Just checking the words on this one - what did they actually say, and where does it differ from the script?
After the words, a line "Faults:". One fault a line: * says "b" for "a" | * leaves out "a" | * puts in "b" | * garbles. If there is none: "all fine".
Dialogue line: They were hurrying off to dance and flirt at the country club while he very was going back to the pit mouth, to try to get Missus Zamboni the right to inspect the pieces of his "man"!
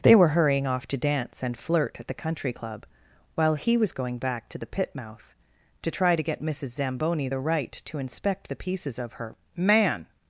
They were hurrying off to dance and flirt at the country club while he was going back to the pit mouth, to try to get Missus Zamboni the right to inspect the pieces of her "man"!
Faults:
* leaves out "very"
* says "her" for "his"